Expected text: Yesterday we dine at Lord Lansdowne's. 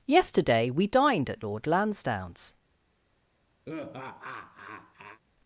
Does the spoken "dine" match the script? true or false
false